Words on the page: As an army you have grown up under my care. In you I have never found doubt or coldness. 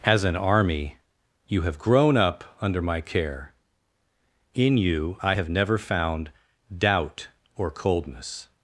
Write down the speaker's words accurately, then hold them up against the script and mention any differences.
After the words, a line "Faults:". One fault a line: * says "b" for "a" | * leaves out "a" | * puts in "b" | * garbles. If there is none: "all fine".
As an army you have grown up under my care. In you I have never found doubt or coldness.
Faults:
all fine